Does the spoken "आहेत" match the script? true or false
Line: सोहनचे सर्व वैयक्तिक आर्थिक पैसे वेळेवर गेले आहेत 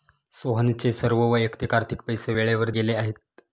true